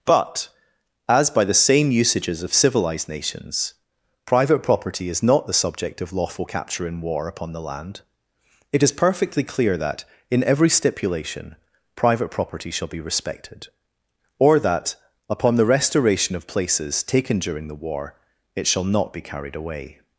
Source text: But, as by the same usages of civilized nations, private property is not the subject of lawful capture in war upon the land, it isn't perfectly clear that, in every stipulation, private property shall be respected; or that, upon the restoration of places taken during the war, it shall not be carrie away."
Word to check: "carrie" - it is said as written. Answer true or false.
false